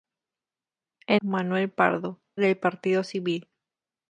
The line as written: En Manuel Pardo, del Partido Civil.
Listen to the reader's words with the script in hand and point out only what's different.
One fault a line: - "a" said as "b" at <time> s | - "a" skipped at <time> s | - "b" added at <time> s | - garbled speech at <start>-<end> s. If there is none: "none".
none